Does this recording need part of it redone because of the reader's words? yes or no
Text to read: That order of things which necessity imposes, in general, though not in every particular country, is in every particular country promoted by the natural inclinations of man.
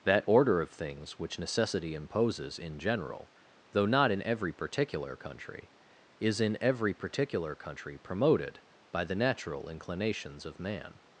no